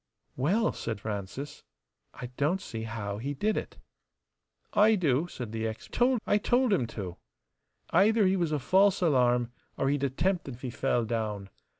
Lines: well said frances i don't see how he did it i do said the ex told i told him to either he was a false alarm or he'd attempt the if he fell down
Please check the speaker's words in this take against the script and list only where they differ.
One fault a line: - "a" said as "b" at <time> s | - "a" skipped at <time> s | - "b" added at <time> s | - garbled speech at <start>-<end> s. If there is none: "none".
none